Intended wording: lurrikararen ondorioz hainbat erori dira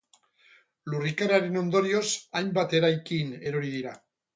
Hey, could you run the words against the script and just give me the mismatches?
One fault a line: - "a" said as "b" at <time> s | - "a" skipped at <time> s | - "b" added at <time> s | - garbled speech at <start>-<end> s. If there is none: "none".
- "eraikin" added at 2.8 s